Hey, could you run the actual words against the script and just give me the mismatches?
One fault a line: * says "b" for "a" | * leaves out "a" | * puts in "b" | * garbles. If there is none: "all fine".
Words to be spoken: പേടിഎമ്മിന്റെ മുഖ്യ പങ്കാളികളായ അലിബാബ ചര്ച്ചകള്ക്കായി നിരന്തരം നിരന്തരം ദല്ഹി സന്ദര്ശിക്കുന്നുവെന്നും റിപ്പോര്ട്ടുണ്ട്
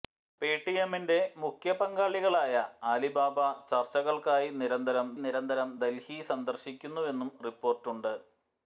all fine